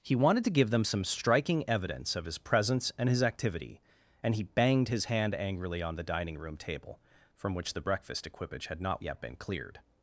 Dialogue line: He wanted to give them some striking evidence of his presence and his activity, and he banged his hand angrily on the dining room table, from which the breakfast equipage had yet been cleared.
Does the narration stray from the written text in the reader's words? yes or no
yes